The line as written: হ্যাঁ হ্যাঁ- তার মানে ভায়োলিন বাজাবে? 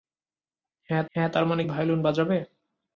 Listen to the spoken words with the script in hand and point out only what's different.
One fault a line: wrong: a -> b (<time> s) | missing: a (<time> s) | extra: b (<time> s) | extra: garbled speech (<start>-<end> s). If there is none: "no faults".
no faults